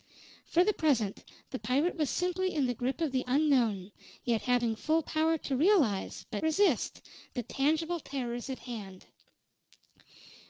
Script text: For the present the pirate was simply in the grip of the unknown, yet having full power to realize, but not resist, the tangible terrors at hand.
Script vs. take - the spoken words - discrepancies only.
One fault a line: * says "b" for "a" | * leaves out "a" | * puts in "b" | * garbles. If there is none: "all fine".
* leaves out "not"